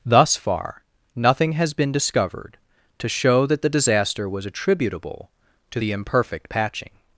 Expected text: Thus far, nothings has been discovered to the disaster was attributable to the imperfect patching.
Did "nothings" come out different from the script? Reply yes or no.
yes